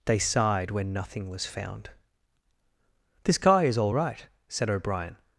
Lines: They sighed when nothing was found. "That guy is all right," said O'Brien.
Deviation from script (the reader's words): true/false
true